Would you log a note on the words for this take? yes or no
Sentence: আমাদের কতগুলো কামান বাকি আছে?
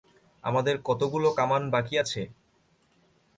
no